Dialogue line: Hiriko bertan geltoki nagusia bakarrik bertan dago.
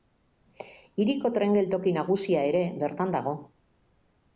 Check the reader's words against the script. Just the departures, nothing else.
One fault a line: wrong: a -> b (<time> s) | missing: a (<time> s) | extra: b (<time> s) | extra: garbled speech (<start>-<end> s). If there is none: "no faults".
wrong: bertan -> tren (1.4 s)
wrong: bakarrik -> ere (2.5 s)